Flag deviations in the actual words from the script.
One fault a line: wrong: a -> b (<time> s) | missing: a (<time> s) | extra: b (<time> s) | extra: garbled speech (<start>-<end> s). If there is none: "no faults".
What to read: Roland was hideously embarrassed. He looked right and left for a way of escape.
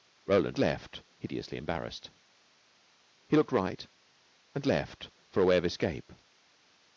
wrong: was -> left (0.6 s)